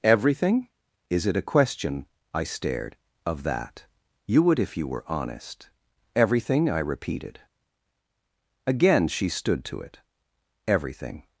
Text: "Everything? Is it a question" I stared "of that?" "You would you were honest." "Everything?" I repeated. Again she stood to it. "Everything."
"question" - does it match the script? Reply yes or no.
yes